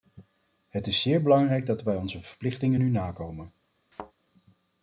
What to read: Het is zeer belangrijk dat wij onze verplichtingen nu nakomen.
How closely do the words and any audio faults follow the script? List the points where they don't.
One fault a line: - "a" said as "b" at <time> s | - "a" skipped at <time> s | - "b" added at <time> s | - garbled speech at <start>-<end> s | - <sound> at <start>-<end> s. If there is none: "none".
- thud at 3.9-4.1 s